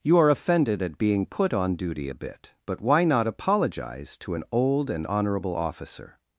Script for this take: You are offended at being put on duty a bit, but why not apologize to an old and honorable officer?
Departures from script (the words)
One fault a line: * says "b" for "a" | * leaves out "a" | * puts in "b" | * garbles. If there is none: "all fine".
all fine